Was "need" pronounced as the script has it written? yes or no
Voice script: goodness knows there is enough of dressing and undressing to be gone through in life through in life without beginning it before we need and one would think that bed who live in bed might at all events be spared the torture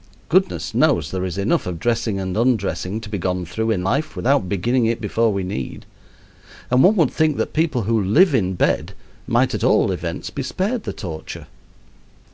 yes